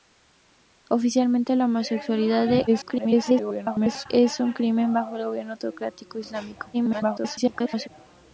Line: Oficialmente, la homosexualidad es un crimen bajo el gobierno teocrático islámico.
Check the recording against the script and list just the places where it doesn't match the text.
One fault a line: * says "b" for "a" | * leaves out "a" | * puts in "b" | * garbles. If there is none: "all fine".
* garbles
* garbles